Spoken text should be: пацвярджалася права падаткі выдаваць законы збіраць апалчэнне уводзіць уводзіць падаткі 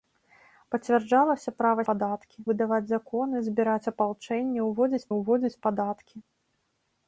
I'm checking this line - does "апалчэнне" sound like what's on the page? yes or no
yes